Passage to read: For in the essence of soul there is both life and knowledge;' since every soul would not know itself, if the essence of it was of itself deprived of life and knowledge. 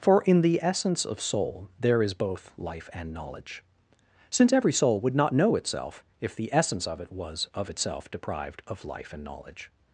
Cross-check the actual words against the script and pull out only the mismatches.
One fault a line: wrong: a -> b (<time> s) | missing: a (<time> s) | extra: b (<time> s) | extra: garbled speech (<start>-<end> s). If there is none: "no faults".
no faults